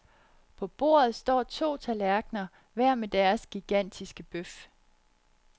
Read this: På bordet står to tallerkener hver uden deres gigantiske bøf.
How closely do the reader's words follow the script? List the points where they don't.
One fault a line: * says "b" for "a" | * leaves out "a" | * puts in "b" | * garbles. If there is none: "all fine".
* says "med" for "uden"